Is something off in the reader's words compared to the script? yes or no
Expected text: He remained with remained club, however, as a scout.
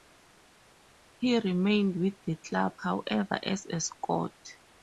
yes